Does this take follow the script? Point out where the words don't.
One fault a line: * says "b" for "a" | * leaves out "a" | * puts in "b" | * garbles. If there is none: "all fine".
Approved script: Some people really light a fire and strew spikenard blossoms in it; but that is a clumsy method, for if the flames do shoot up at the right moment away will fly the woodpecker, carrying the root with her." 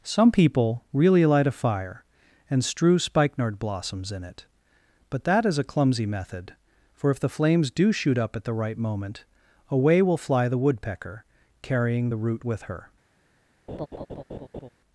all fine